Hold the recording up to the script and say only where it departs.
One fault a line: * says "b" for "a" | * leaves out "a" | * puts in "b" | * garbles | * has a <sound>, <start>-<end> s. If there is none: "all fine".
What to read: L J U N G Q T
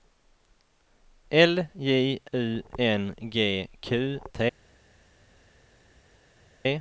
all fine